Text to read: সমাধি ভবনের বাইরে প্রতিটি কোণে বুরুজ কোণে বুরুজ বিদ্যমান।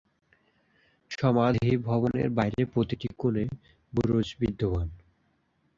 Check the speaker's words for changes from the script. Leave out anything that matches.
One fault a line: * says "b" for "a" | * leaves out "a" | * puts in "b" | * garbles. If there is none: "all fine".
* leaves out "কোণে বুরুজ"